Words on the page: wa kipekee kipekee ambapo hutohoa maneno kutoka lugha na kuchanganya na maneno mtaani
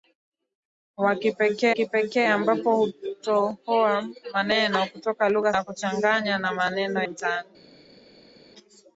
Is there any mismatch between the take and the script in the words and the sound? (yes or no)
no